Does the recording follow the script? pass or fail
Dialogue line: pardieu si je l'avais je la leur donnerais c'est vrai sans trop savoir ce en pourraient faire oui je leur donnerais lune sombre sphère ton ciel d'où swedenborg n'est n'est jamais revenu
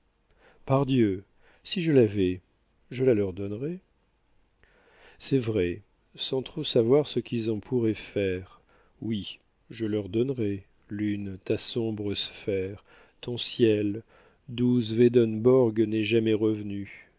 fail